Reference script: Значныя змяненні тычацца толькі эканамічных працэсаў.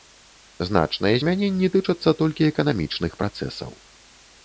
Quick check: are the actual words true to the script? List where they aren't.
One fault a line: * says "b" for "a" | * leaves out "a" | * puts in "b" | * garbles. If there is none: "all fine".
all fine